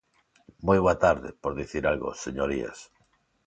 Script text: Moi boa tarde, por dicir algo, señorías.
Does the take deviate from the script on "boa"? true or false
false